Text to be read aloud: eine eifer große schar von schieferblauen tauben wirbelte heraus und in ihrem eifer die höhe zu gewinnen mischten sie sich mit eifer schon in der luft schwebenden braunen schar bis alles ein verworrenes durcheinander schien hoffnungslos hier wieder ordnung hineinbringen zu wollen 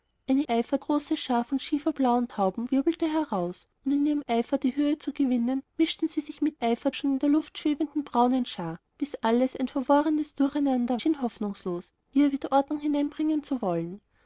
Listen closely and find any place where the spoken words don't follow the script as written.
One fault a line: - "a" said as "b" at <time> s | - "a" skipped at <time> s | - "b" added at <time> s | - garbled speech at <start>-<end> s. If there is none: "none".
none